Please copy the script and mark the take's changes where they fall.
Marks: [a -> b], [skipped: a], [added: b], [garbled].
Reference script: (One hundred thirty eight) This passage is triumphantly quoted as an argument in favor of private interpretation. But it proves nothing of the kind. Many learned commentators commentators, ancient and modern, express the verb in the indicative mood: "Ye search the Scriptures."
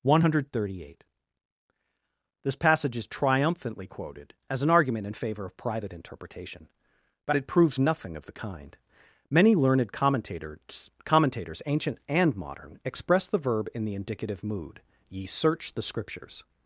(One hundred thirty eight) This passage is triumphantly quoted as an argument in favor of private interpretation. But it proves nothing of the kind. Many learned commentators commentators, ancient and modern, express the verb in the indicative mood: "Ye search the Scriptures."